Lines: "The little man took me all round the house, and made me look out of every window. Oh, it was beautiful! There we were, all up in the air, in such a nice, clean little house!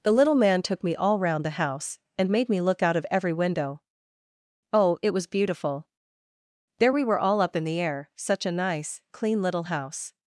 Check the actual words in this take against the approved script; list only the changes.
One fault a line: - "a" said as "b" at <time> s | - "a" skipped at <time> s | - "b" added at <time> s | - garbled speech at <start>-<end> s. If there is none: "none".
- "in" skipped at 8.1 s